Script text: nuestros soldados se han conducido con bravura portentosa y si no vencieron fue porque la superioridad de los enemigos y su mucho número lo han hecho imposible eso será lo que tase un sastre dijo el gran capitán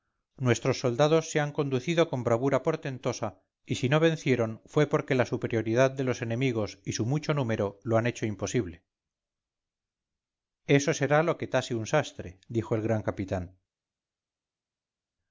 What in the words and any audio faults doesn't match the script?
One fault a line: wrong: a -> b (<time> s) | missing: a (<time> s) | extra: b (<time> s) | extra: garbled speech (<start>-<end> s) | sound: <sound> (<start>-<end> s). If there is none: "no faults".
no faults